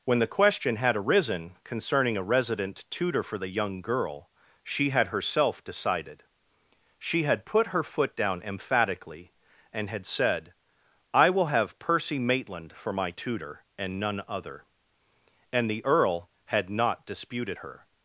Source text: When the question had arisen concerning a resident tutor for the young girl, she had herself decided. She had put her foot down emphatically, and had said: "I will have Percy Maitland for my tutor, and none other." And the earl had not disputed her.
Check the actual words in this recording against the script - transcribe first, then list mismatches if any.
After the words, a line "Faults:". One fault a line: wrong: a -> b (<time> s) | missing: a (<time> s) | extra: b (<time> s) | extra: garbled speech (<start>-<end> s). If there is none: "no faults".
When the question had arisen concerning a resident tutor for the young girl, she had herself decided. She had put her foot down emphatically, and had said: "I will have Percy Maitland for my tutor, and none other." And the earl had not disputed her.
Faults:
no faults